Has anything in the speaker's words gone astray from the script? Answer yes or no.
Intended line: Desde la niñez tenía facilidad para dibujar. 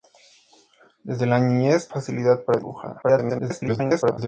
yes